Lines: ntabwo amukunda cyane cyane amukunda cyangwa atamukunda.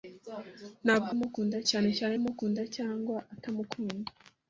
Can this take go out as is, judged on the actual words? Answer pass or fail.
pass